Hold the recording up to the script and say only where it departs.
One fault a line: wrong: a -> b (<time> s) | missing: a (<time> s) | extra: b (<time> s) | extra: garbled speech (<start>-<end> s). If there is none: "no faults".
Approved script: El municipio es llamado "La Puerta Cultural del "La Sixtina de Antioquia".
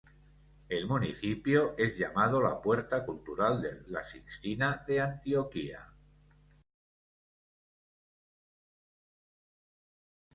no faults